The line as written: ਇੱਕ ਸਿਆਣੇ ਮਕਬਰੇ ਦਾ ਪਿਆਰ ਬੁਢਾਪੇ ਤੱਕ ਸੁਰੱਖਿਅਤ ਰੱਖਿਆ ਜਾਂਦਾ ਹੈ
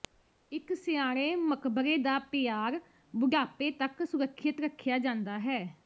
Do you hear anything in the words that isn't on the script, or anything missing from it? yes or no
no